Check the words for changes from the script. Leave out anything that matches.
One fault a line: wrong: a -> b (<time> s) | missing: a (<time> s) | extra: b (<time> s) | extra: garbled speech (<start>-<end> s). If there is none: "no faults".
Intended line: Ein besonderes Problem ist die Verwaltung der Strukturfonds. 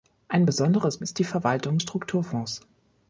missing: Problem (1.0 s)
missing: der (1.8 s)